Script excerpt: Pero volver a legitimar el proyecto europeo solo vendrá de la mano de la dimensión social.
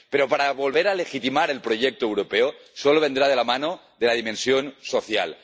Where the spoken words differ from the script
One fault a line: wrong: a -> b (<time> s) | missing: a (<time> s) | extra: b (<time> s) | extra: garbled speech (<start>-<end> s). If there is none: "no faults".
no faults